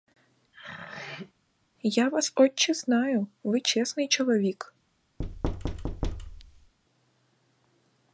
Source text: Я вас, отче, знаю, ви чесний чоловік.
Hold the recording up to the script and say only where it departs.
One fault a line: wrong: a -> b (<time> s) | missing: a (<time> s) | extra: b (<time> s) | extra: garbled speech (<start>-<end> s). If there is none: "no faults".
no faults